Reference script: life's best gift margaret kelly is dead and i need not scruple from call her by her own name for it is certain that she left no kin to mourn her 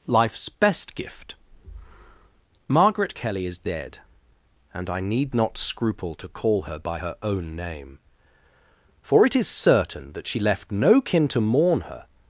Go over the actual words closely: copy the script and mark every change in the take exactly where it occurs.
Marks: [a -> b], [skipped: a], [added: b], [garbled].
life's best gift margaret kelly is dead and i need not scruple [from -> to] call her by her own name for it is certain that she left no kin to mourn her